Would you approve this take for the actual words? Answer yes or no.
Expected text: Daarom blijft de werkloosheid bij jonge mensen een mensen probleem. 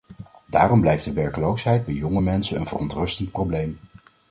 no